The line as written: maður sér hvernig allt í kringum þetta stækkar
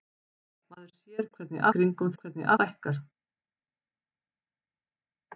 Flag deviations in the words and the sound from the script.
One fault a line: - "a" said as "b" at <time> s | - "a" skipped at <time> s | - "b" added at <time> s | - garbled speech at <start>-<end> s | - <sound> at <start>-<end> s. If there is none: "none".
- "allt" skipped at 1.7 s
- "þetta" said as "hvernig" at 2.2 s